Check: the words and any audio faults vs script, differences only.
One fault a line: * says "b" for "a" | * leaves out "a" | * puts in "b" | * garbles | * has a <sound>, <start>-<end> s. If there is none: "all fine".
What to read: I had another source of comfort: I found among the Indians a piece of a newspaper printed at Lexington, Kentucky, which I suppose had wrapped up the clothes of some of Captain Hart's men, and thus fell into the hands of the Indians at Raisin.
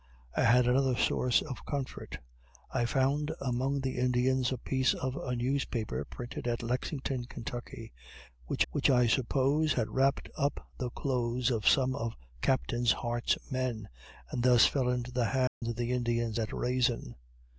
* puts in "which"
* has a dropout, 15.5-15.6 s